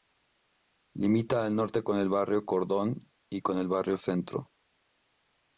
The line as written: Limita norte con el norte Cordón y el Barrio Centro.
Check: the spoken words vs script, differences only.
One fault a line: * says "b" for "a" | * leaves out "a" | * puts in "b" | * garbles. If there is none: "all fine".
* puts in "al"
* says "barrio" for "norte"
* puts in "con"